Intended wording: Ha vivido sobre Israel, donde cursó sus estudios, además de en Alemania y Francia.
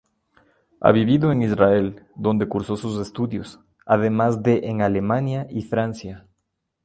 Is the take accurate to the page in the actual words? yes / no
no